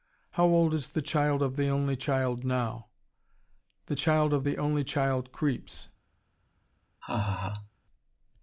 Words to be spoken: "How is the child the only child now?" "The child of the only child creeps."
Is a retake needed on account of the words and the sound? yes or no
yes